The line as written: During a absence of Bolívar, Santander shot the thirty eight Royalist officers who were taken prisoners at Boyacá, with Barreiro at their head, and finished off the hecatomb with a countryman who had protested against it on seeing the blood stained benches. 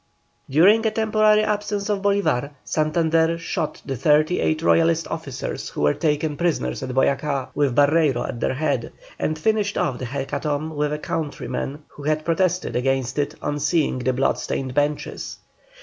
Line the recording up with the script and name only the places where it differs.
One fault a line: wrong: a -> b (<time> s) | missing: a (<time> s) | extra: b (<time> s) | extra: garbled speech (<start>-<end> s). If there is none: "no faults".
extra: temporary (0.9 s)